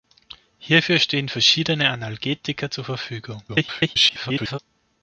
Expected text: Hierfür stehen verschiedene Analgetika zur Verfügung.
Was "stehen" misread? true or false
false